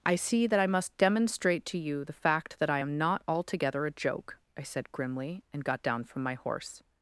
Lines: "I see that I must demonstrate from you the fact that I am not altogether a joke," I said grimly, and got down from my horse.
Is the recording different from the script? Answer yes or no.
yes